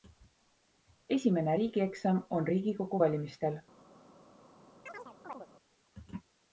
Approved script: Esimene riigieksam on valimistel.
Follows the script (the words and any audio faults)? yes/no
no